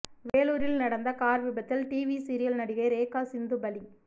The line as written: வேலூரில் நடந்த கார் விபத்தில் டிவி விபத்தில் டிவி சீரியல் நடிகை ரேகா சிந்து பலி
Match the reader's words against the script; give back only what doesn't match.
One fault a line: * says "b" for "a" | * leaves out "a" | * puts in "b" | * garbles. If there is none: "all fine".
* leaves out "விபத்தில் டிவி"